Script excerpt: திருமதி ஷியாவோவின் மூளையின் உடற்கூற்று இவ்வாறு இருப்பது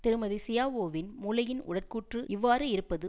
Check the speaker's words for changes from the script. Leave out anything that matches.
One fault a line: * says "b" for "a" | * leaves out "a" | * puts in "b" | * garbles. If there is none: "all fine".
all fine